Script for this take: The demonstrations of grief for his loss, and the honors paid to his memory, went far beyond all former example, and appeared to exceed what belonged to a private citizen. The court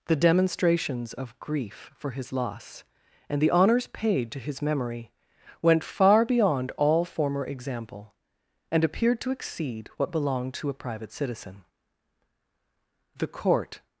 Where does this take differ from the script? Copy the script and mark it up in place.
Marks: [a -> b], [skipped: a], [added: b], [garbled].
The demonstrations of grief for his loss, and the honors paid to his memory, went far beyond all former example, and appeared to exceed what belonged to a private citizen. The court